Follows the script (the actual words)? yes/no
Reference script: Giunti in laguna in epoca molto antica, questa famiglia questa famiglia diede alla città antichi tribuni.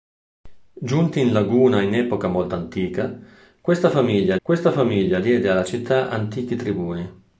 yes